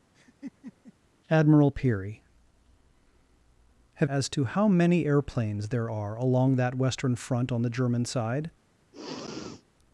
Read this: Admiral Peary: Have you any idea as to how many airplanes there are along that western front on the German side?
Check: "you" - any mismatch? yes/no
yes